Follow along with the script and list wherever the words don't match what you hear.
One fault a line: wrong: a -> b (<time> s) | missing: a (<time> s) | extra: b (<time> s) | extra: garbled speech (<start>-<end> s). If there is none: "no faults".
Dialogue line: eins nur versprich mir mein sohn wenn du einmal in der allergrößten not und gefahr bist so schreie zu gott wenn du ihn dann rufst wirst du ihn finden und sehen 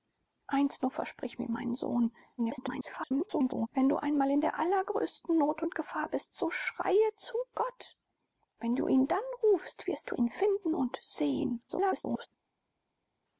extra: garbled speech (2.4-3.7 s)
extra: garbled speech (11.7-12.3 s)